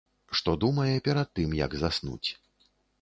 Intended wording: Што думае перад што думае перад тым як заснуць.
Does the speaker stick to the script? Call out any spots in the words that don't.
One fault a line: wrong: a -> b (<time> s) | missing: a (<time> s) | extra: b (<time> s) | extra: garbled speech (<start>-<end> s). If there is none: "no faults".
missing: што думае перад (1.3 s)